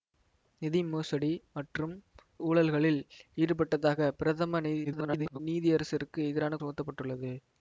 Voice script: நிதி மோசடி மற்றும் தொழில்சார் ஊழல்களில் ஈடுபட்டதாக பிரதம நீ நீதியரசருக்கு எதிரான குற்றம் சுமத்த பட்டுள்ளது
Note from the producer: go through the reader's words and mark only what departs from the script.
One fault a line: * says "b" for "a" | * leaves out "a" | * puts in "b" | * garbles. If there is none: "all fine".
* leaves out "தொழில்சார்"
* garbles
* leaves out "குற்றம்"